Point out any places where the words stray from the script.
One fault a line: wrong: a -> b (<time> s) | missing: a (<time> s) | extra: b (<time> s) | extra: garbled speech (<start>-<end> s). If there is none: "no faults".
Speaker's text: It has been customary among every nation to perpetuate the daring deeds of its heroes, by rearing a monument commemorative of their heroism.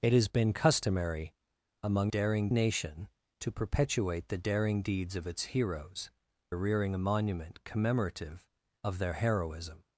wrong: every -> daring (2.1 s)
missing: by (6.1 s)